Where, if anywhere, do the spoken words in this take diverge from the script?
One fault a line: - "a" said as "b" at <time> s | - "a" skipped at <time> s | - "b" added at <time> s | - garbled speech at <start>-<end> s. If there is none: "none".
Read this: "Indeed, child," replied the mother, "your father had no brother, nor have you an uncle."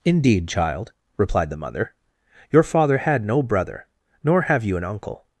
none